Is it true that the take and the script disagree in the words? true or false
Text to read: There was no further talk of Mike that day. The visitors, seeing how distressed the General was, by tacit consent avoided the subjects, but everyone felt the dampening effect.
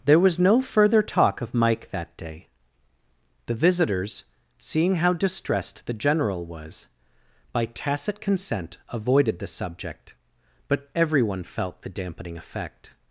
true